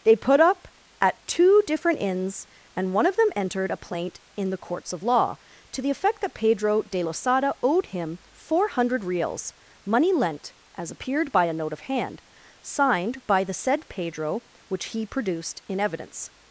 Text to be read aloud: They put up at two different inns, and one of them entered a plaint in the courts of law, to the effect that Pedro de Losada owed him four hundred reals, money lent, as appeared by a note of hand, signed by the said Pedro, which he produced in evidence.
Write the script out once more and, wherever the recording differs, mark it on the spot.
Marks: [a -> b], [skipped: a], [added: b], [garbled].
They put up at two different inns, and one of them entered a plaint in the courts of law, to the effect that Pedro de Losada owed him four hundred reals, money lent, as appeared by a note of hand, signed by the said Pedro, which he produced in evidence.